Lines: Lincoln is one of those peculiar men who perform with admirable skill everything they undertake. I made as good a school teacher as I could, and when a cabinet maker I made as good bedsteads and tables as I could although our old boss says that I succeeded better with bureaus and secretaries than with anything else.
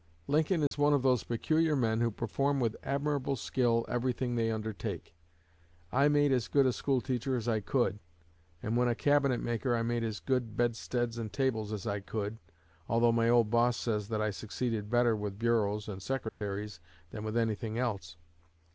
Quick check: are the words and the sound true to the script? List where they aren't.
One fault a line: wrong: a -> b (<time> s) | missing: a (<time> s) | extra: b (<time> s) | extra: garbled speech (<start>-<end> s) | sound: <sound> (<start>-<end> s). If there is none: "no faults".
sound: dropout (0.7-0.7 s)
wrong: our -> my (13.1 s)
sound: dropout (16.3-16.4 s)